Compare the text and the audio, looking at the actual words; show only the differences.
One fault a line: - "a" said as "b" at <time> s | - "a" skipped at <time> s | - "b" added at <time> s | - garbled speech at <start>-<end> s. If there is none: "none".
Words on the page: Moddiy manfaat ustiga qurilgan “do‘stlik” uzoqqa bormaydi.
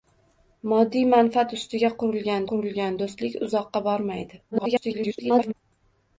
- "qurilgan" added at 2.5 s
- garbled speech at 4.5-5.5 s